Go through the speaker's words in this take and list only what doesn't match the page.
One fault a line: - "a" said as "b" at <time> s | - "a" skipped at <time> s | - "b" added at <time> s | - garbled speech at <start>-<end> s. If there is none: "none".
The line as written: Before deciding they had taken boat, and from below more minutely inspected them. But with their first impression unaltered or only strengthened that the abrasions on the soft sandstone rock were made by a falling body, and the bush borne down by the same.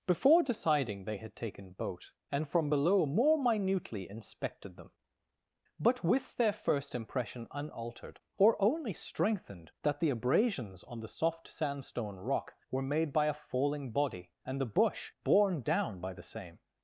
none